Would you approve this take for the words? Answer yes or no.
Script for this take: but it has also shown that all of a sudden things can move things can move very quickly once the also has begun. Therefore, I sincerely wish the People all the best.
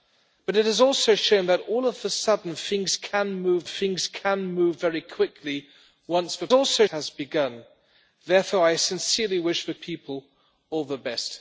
yes